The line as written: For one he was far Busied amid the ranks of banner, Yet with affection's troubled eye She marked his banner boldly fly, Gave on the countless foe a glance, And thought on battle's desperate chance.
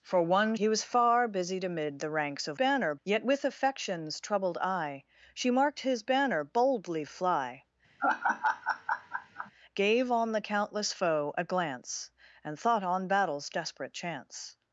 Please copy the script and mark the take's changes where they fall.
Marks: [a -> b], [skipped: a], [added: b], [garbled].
For one he was far Busied amid the ranks of banner, Yet with affection's troubled eye She marked his banner boldly fly, Gave on the countless foe a glance, And thought on battle's desperate chance.